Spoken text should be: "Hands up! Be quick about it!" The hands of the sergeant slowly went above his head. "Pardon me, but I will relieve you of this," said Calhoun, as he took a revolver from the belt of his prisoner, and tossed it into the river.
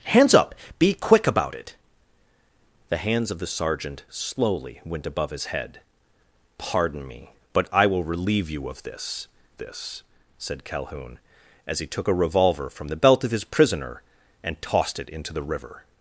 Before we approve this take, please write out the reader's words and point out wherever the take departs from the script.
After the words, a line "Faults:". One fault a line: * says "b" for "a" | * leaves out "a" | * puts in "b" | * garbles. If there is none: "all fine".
"Hands up! Be quick about it!" The hands of the sergeant slowly went above his head. "Pardon me, but I will relieve you of this this," said Calhoun, as he took a revolver from the belt of his prisoner, and tossed it into the river.
Faults:
* puts in "this"